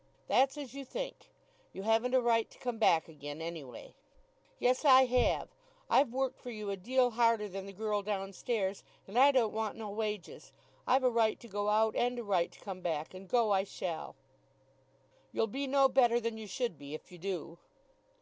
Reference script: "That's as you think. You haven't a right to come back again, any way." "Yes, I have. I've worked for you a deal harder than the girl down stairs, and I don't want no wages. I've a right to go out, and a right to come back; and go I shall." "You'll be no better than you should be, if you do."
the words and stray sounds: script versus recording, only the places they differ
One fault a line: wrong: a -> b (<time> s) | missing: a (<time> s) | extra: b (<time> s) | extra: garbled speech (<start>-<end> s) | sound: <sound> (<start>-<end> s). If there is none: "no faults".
no faults